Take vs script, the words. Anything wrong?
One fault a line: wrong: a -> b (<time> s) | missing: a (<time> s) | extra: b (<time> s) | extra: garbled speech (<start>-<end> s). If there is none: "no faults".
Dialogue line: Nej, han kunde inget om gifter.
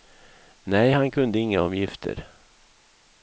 no faults